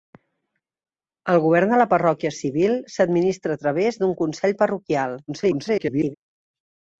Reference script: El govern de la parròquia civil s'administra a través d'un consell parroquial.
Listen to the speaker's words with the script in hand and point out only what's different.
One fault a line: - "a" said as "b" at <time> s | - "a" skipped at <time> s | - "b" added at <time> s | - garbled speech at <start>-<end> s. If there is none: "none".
- garbled speech at 5.3-6.1 s